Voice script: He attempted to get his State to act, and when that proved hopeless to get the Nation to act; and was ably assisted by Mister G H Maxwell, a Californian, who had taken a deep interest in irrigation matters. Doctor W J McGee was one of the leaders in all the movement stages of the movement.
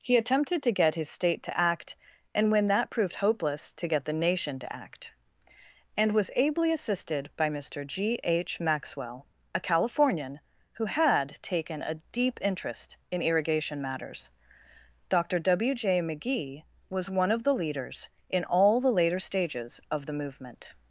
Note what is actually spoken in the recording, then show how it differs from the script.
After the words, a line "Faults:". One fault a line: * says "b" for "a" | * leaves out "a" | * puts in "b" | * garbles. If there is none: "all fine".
He attempted to get his State to act, and when that proved hopeless to get the Nation to act; and was ably assisted by Mister G H Maxwell, a Californian, who had taken a deep interest in irrigation matters. Doctor W J McGee was one of the leaders in all the later stages of the movement.
Faults:
* says "later" for "movement"